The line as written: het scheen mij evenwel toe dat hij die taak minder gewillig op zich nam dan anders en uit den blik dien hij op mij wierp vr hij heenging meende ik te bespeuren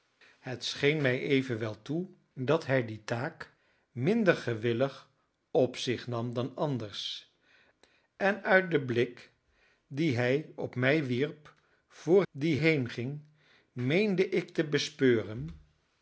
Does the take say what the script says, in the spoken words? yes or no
no